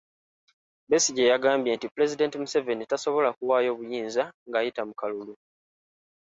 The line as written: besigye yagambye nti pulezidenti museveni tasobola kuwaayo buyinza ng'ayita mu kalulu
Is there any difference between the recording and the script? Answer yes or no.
no